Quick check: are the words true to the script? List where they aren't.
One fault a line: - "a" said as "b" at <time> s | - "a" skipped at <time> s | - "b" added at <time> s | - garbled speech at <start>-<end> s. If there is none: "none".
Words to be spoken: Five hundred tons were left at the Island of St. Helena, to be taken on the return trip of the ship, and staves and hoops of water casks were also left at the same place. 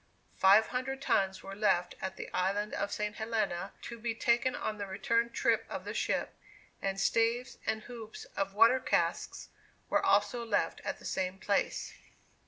none